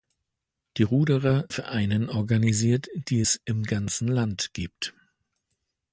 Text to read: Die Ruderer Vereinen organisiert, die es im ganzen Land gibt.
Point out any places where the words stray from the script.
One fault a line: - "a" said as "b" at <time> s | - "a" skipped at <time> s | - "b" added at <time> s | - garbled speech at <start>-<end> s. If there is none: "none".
none